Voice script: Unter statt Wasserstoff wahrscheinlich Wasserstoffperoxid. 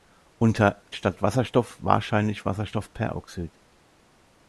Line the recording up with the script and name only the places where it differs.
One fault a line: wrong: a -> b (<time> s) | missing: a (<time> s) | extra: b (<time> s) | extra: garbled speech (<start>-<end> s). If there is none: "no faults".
no faults